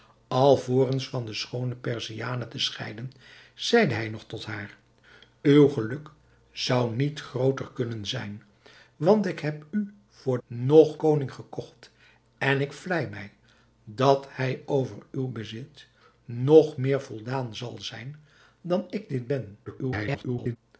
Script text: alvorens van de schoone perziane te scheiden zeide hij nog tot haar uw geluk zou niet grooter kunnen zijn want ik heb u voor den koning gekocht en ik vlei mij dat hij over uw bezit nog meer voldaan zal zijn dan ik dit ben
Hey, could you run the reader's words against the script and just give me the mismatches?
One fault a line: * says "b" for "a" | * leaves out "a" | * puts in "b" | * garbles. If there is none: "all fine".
* says "nog" for "den"
* garbles